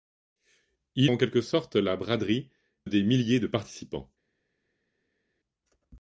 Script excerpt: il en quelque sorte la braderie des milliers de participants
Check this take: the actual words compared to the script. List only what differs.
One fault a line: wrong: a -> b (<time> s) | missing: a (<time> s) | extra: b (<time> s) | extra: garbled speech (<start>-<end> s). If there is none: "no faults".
no faults